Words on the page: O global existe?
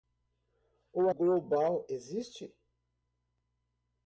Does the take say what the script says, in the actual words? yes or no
yes